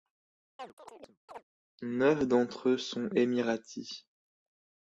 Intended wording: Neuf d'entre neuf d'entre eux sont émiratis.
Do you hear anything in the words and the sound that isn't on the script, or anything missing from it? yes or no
yes